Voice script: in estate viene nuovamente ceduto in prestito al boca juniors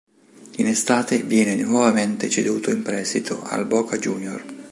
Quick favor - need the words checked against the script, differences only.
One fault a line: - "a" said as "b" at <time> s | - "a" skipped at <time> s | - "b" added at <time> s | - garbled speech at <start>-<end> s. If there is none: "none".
none